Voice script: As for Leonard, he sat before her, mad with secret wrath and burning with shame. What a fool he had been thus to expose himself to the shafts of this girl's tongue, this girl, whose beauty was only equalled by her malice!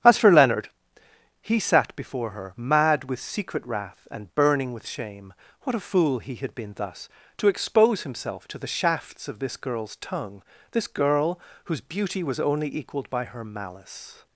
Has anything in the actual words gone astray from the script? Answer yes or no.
no